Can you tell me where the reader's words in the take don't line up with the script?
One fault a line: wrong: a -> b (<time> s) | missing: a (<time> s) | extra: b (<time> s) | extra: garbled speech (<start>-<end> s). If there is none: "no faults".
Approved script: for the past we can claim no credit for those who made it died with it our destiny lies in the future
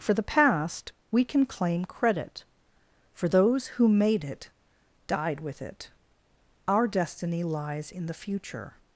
missing: no (1.9 s)